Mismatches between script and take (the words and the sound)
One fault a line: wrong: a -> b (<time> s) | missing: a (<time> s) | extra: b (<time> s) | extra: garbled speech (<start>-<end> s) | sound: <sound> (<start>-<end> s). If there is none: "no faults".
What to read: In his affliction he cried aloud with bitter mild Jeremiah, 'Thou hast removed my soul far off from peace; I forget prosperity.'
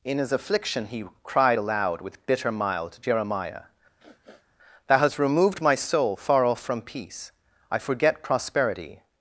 sound: sniff (4.0-4.5 s)